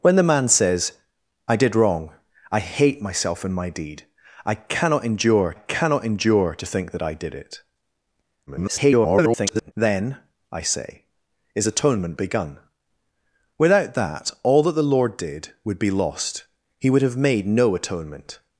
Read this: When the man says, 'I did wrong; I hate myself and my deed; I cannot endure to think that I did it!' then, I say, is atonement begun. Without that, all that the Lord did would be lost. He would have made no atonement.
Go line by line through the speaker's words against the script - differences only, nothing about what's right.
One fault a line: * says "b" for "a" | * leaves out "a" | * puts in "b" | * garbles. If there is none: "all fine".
* puts in "cannot endure"
* garbles